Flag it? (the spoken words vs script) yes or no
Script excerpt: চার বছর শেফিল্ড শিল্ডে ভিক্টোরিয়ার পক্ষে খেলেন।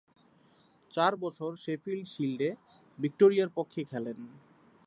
no